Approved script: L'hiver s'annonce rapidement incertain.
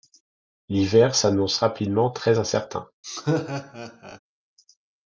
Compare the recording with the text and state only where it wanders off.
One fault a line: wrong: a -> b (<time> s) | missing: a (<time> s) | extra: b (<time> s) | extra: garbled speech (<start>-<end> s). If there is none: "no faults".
extra: très (2.1 s)